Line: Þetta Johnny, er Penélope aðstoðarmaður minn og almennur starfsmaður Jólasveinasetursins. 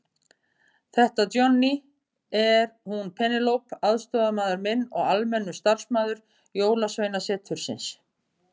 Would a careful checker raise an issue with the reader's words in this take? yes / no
yes